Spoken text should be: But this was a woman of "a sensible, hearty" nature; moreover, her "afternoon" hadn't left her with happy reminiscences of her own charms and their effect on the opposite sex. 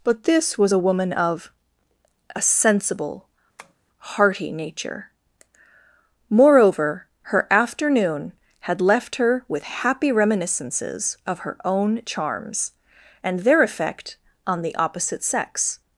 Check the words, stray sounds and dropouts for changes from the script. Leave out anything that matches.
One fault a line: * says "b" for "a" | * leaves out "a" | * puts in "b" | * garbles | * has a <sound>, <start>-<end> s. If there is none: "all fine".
* has a tap, 3.6-3.7 s
* says "had" for "hadn't"